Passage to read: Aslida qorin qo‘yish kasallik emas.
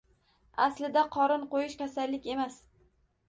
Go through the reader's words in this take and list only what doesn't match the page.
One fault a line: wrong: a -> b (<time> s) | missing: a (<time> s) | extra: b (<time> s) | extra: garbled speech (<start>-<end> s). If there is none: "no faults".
no faults